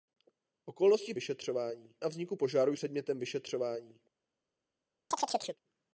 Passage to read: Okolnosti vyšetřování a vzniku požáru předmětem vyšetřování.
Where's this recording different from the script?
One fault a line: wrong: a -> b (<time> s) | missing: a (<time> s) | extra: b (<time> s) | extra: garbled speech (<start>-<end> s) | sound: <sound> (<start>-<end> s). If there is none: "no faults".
sound: chirp (5.1-5.6 s)